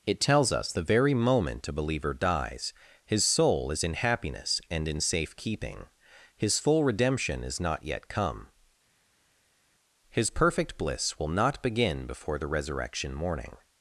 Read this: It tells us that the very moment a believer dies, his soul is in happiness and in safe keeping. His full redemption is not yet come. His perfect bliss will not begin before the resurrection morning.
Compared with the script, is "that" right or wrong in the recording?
wrong